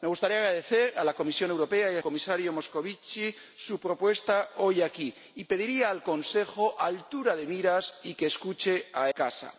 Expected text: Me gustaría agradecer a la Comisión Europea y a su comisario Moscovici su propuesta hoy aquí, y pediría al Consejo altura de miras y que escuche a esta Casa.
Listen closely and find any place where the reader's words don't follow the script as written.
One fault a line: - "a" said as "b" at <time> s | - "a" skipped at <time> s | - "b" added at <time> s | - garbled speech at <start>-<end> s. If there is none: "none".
- "su" skipped at 2.0 s
- "esta" skipped at 9.1 s